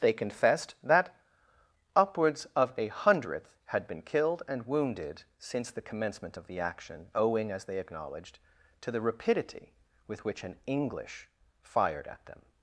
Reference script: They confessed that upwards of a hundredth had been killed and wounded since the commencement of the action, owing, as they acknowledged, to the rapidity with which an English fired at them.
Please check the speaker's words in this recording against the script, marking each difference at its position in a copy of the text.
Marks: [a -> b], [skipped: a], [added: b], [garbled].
They confessed that upwards of a hundredth had been killed and wounded since the commencement of the action, owing, as they acknowledged, to the rapidity with which an English fired at them.